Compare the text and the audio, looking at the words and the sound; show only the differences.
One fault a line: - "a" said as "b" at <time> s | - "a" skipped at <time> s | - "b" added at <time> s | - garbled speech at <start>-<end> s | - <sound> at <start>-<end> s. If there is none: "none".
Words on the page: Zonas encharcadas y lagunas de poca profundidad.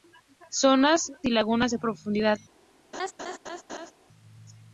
- "encharcadas" skipped at 1.1 s
- "poca" skipped at 1.8 s
- laugh at 2.9-3.9 s